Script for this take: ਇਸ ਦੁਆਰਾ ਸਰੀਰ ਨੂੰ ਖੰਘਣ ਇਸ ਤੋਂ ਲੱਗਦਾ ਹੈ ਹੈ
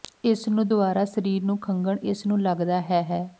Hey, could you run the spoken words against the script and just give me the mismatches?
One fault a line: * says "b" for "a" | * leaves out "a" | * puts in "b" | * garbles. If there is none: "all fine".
* puts in "ਨੂੰ"
* says "ਨੂੰ" for "ਤੋਂ"